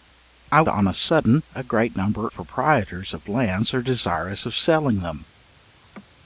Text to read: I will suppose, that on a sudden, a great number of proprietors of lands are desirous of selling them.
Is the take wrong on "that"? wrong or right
wrong